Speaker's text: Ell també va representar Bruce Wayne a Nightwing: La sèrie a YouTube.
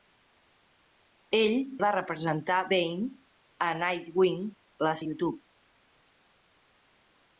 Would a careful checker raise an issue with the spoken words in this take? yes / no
yes